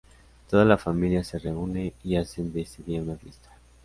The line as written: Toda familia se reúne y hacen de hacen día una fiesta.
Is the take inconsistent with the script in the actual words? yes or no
yes